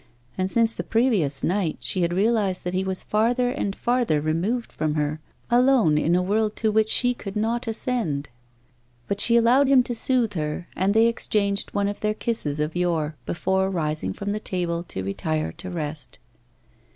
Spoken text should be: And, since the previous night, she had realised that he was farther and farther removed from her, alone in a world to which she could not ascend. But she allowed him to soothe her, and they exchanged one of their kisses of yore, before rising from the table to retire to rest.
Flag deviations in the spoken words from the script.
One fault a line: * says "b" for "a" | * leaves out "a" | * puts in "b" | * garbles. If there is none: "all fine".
all fine